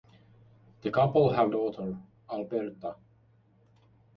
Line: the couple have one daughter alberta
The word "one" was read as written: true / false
false